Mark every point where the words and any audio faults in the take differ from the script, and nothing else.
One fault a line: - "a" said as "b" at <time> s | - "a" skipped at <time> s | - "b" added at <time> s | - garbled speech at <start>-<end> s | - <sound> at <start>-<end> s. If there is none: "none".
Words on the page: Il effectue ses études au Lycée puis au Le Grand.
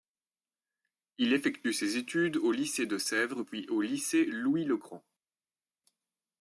- "de Sèvres" added at 2.9 s
- "Lycée Louis" added at 3.8 s